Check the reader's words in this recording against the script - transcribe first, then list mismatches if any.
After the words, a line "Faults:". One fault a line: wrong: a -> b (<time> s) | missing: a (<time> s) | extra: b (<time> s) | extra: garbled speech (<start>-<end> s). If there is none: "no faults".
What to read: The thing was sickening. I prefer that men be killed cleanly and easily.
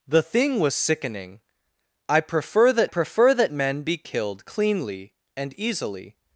The thing was sickening. I prefer that prefer that men be killed cleanly and easily.
Faults:
extra: prefer that (2.8 s)